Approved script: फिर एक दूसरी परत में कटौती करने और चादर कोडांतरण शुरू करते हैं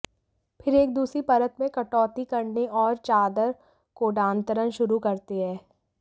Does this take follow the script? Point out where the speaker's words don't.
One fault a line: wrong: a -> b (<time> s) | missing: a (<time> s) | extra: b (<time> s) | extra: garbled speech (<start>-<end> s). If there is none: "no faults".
no faults